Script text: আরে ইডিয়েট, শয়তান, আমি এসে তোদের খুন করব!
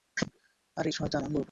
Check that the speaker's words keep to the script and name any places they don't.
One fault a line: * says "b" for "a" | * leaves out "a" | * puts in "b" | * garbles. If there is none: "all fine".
* leaves out "ইডিয়েট"
* leaves out "এসে তোদের খুন"